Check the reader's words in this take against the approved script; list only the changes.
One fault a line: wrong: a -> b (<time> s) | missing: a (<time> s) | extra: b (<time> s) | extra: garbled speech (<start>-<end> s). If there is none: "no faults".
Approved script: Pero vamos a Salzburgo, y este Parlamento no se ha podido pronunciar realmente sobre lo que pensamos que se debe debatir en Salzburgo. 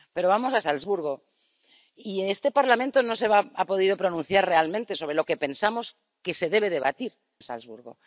missing: en (7.1 s)